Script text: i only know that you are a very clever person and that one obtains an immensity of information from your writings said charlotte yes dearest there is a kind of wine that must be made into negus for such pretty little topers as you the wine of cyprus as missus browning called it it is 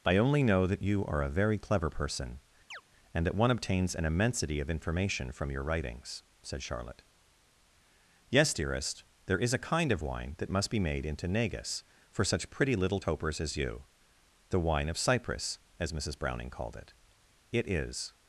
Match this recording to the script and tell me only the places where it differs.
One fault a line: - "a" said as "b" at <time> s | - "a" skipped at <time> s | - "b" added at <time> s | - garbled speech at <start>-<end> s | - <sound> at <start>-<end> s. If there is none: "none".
- chirp at 2.7-2.8 s